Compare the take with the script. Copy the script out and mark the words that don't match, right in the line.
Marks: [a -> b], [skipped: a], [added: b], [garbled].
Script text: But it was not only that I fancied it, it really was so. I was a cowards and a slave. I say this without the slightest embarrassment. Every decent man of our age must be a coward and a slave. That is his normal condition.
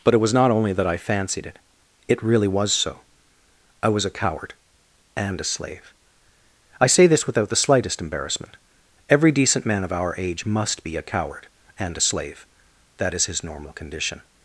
But it was not only that I fancied it, it really was so. I was a [cowards -> coward] and a slave. I say this without the slightest embarrassment. Every decent man of our age must be a coward and a slave. That is his normal condition.